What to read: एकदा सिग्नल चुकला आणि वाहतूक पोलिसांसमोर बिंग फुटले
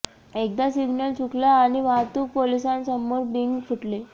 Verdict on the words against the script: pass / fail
pass